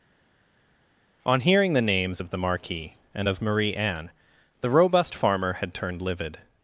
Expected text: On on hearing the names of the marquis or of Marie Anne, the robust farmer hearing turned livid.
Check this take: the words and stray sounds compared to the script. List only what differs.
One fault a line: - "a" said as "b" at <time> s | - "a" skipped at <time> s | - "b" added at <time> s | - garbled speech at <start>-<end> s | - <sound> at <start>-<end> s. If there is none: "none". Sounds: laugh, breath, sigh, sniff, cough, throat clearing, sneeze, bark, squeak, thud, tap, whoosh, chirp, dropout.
- "on" skipped at 1.4 s
- "or" said as "and" at 3.1 s
- "hearing" said as "had" at 5.5 s